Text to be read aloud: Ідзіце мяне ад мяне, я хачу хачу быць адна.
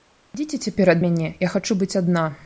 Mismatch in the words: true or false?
true